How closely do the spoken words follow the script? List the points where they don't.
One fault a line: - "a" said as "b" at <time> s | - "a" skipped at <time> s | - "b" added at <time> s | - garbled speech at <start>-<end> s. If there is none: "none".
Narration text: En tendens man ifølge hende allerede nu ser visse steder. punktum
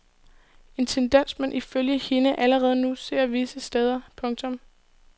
none